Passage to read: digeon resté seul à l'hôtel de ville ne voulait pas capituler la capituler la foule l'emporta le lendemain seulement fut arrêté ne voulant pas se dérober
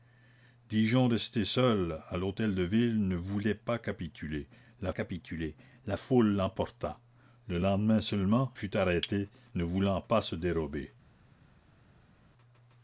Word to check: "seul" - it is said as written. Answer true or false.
true